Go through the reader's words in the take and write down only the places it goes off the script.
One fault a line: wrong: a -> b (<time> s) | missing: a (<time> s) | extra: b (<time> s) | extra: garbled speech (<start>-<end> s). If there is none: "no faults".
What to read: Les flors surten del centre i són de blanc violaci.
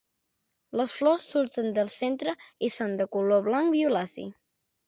extra: color (3.2 s)